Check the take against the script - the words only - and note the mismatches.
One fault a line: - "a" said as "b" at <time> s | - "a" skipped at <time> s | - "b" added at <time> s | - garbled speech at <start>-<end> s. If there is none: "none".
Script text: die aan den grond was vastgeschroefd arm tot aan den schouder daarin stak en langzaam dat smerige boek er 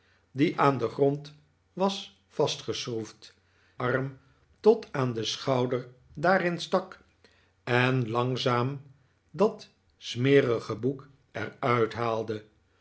none